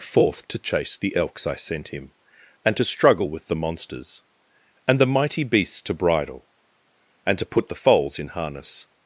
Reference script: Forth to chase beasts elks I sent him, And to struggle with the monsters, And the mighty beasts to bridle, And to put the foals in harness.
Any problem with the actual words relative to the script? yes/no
yes